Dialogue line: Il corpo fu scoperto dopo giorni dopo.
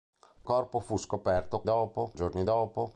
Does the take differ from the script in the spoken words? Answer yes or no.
no